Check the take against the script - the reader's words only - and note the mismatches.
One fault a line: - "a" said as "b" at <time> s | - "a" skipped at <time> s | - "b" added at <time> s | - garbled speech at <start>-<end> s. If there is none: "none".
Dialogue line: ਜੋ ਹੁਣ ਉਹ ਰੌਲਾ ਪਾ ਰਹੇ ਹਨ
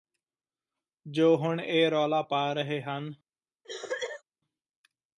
- "ਉਹ" said as "ਇਹ" at 1.6 s